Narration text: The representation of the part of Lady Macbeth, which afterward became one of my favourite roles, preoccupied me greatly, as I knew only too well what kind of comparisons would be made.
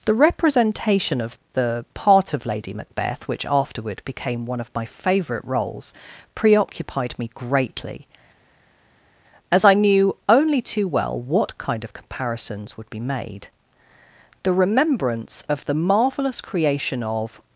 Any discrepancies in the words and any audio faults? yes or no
yes